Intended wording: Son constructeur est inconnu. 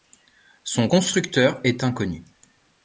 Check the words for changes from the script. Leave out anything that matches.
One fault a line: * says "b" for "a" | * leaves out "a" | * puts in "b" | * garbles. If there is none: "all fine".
all fine